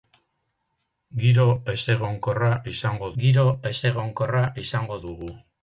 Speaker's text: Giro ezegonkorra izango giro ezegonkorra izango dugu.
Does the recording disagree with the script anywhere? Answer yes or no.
no